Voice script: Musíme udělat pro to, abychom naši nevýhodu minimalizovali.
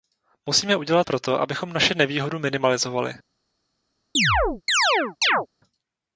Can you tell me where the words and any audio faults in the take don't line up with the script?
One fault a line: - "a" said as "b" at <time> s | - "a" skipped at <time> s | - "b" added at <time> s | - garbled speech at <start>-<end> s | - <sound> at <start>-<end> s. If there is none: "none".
- chirp at 4.1-5.5 s